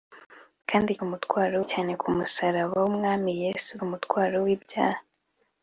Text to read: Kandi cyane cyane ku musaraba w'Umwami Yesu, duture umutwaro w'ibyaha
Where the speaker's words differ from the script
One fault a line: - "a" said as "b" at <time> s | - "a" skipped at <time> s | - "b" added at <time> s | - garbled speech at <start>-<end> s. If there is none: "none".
- "cyane" said as "umutwaro" at 1.0 s
- "duture" skipped at 3.7 s